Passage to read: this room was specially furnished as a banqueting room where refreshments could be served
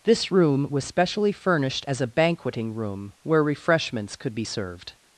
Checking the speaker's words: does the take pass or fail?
pass